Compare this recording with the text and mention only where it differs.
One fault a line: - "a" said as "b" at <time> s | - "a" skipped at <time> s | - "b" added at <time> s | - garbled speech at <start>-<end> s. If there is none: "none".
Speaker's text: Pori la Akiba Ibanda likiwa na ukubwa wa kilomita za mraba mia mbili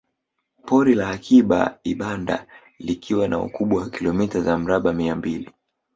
none